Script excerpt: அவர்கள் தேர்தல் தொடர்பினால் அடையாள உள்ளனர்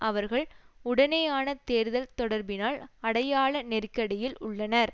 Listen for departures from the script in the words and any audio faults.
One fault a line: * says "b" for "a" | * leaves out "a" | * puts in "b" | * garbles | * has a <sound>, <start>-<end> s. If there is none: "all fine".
* puts in "உடனான"
* puts in "நெருக்கடியில்"